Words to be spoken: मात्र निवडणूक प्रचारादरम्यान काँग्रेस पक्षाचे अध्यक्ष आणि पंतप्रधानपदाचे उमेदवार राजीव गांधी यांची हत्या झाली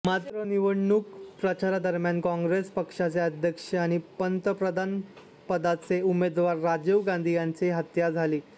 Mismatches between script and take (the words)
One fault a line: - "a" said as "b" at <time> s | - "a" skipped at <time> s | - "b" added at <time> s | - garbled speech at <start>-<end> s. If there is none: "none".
none